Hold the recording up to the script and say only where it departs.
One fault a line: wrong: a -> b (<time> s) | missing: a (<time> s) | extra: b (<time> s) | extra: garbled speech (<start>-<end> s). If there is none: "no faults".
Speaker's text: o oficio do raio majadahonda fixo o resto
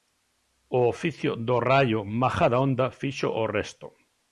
no faults